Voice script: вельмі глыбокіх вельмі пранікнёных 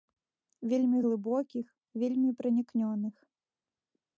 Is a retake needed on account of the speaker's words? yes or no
no